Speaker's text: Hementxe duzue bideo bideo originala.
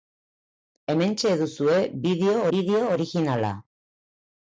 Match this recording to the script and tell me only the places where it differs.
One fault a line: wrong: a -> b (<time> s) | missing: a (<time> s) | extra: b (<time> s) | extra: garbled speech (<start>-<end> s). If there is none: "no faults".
no faults